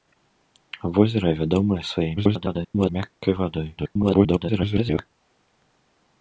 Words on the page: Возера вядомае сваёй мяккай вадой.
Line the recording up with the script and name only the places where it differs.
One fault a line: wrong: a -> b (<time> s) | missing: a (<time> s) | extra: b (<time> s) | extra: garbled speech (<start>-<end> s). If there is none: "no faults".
extra: garbled speech (2.2-2.9 s)
extra: garbled speech (3.8-5.1 s)